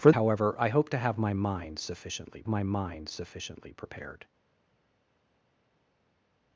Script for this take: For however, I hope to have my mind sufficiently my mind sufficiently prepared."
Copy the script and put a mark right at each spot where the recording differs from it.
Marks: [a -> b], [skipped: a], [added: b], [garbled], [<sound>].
For however, I hope to have my mind sufficiently my mind sufficiently prepared."